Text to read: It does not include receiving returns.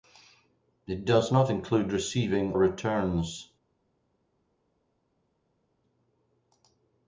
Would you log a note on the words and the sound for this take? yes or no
no